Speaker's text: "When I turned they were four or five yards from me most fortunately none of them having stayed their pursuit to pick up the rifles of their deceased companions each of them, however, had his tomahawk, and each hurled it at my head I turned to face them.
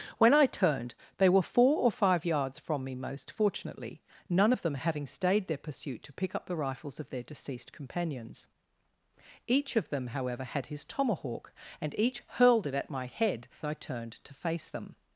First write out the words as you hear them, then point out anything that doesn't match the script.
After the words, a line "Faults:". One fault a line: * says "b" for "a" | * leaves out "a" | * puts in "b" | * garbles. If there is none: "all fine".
"When I turned they were four or five yards from me most fortunately none of them having stayed their pursuit to pick up the rifles of their deceased companions each of them, however, had his tomahawk, and each hurled it at my head I turned to face them.
Faults:
all fine